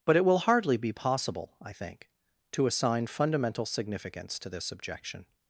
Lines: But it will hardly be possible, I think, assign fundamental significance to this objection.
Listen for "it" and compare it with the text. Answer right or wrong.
right